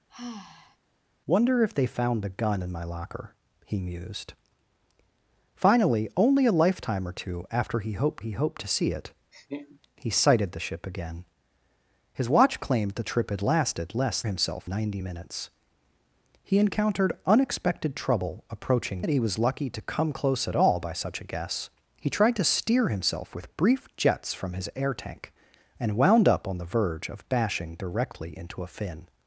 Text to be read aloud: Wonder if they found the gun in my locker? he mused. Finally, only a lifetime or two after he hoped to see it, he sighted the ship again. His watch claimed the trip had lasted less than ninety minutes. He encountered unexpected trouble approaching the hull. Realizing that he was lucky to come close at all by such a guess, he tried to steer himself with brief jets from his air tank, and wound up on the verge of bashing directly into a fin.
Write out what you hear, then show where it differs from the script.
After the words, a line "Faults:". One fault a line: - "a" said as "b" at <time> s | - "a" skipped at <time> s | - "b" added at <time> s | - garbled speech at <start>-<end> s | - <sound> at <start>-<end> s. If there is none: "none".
Wonder if they found the gun in my locker? he mused. Finally, only a lifetime or two after he hoped he hoped to see it, he sighted the ship again. His watch claimed the trip had lasted less himself ninety minutes. He encountered unexpected trouble approaching that he was lucky to come close at all by such a guess, he tried to steer himself with brief jets from his air tank, and wound up on the verge of bashing directly into a fin.
Faults:
- sigh at 0.1-0.8 s
- "he hoped" added at 8.2 s
- laugh at 9.3-9.8 s
- "than" said as "himself" at 14.2 s
- "the hull Realizing" skipped at 19.0 s